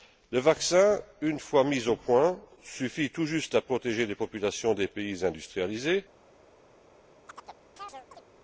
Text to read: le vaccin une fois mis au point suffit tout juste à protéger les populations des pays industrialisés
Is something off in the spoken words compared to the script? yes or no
no